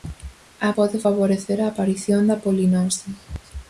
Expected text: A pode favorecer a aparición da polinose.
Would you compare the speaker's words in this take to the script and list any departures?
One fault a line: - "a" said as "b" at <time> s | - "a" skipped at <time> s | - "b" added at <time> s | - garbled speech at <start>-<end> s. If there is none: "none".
none